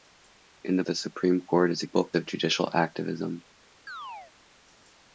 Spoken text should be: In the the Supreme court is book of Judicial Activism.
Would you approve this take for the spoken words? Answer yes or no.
yes